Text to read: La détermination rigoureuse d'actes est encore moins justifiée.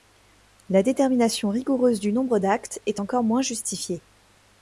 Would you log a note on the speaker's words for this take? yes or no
yes